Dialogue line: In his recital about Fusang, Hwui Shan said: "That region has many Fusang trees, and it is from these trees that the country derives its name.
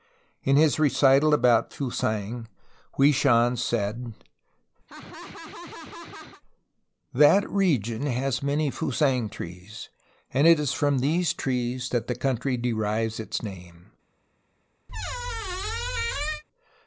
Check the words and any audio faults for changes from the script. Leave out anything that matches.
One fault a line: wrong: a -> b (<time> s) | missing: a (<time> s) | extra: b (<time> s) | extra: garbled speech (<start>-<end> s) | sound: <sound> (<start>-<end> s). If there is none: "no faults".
sound: laugh (4.9-6.4 s)
sound: squeak (14.9-16.4 s)